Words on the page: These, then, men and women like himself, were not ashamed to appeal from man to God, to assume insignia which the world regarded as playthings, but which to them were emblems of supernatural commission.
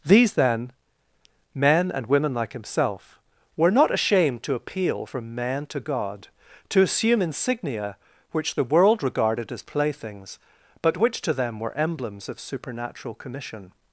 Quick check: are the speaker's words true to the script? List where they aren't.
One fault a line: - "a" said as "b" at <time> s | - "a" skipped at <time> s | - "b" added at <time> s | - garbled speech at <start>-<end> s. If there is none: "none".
none